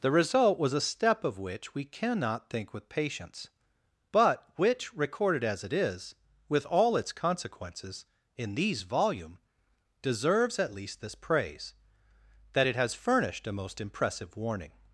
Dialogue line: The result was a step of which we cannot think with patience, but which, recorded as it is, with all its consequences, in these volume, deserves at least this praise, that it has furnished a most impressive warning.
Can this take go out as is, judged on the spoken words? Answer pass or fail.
pass